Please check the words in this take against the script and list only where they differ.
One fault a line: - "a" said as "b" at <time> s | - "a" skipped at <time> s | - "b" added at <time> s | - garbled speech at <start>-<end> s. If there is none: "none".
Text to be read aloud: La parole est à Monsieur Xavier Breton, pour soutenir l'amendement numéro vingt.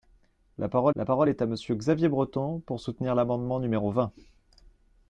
- "la parole" added at 0.9 s